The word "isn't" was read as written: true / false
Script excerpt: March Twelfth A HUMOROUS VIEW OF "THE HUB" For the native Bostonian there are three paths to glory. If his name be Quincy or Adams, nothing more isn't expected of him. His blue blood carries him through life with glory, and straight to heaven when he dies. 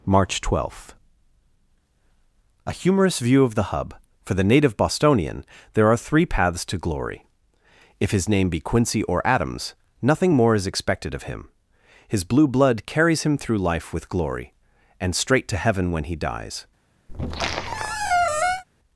false